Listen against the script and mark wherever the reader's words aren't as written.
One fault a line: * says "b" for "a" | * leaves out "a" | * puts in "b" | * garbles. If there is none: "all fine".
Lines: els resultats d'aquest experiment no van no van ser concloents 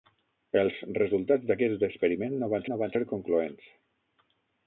all fine